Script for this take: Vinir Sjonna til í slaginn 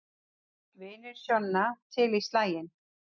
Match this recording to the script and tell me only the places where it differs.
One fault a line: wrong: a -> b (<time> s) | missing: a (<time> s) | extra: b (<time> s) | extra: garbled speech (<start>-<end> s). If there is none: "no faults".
no faults